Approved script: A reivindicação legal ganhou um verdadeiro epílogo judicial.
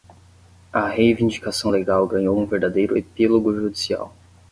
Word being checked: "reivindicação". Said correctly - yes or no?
yes